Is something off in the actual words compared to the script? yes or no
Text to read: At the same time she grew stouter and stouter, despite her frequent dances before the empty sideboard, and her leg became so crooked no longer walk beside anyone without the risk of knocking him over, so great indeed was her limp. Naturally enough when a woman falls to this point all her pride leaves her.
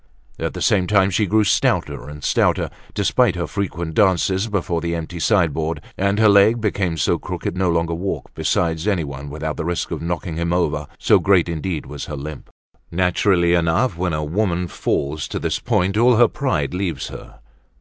no